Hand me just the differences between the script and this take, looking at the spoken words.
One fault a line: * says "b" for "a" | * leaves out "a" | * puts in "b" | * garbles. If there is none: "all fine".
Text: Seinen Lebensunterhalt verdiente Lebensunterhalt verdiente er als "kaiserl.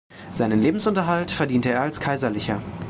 * leaves out "Lebensunterhalt verdiente"